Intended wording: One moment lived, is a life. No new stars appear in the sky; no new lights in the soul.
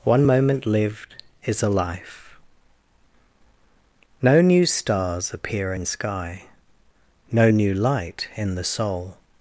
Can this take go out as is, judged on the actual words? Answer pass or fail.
fail